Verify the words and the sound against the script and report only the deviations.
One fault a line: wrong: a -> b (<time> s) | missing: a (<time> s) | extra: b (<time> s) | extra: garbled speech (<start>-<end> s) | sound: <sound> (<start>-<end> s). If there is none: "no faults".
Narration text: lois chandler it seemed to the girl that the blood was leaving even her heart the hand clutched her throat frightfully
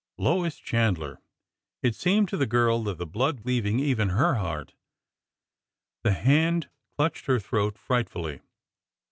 missing: was (3.4 s)